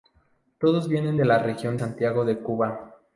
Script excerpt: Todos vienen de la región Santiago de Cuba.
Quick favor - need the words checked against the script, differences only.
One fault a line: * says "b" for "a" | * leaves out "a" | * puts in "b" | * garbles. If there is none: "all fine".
all fine